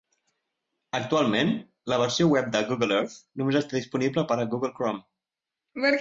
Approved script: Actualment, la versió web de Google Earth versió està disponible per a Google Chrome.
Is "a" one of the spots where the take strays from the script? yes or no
no